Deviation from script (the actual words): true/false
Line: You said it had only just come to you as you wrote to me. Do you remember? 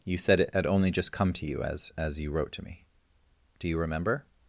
true